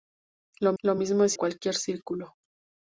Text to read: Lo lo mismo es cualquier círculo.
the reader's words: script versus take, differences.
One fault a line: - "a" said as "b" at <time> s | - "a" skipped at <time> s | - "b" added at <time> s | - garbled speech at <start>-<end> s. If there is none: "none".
none